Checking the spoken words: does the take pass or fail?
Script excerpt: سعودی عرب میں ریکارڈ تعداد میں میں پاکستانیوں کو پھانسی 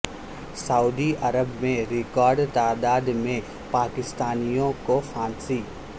fail